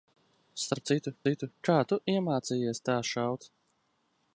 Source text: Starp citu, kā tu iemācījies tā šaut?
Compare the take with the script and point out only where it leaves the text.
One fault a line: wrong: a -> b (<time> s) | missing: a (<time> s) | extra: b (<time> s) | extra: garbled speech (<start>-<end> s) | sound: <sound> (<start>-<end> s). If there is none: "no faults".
extra: citu (1.3 s)